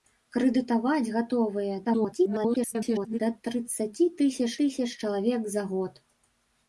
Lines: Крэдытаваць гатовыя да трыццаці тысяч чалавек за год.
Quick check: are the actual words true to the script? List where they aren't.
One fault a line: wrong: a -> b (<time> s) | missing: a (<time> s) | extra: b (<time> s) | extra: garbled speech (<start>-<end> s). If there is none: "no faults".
extra: garbled speech (1.8-3.2 s)
extra: тысяч (4.6 s)